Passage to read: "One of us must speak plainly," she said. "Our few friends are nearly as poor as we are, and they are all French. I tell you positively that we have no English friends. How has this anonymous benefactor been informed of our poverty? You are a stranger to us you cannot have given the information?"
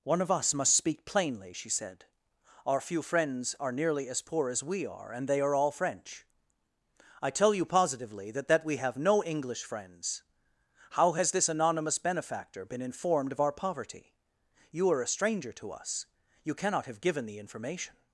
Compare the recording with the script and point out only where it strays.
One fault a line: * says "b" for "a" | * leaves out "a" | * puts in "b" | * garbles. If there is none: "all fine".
* puts in "that"